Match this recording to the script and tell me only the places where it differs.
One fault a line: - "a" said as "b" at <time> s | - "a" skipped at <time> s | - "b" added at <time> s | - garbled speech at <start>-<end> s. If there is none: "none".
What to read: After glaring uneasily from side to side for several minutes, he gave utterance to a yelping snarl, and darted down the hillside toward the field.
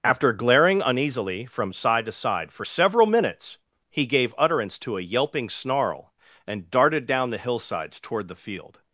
- "hillside" said as "hillsides" at 7.4 s